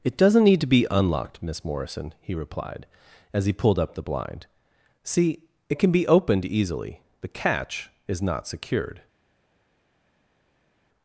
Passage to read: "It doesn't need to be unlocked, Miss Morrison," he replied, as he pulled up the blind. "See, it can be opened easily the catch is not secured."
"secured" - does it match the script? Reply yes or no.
yes